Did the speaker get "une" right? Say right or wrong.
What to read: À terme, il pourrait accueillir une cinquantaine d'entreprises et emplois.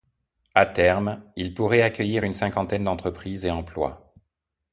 right